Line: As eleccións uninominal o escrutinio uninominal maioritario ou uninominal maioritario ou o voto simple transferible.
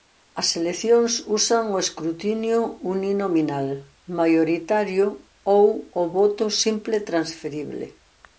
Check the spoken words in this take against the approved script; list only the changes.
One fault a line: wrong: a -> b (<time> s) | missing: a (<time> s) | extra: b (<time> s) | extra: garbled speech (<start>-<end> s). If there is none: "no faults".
wrong: uninominal -> usan (1.4 s)
missing: uninominal maioritario ou (5.7 s)